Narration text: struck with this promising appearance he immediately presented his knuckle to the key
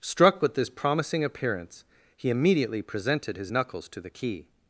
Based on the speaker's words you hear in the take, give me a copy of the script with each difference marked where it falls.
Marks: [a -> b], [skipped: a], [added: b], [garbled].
struck with this promising appearance he immediately presented his [knuckle -> knuckles] to the key